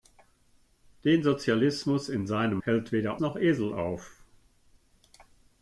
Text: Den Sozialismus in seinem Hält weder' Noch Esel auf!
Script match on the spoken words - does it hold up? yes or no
yes